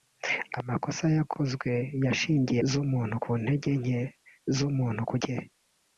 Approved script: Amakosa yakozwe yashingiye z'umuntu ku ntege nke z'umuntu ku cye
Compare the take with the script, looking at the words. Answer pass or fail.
pass